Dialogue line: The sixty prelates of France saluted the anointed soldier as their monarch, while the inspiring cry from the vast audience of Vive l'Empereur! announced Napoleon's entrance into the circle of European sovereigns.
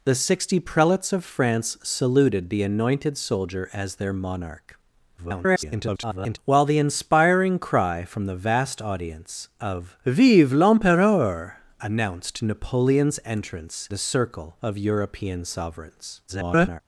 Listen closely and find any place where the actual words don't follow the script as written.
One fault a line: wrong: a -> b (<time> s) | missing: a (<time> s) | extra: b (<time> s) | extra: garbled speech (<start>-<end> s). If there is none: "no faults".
extra: garbled speech (5.2-6.4 s)
missing: into (13.9 s)
extra: garbled speech (16.3-16.8 s)